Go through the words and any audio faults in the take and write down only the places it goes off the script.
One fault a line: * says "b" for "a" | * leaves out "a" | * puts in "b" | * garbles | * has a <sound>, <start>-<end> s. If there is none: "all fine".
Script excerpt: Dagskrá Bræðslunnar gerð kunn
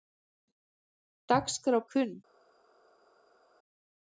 * leaves out "Bræðslunnar gerð"